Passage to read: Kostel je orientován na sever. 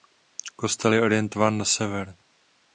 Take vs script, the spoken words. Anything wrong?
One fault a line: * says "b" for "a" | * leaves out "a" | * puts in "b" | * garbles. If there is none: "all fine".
all fine